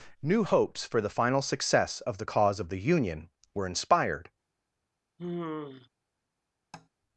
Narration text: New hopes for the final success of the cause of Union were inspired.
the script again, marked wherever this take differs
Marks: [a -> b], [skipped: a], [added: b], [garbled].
New hopes for the final success of the cause of [added: the] Union were inspired.